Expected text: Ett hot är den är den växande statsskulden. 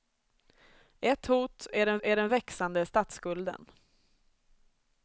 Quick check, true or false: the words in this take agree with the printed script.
true